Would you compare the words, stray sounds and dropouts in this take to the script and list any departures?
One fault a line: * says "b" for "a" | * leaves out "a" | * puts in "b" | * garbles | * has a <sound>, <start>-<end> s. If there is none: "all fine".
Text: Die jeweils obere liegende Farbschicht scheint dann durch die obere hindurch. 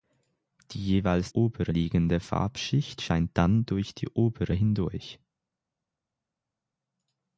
all fine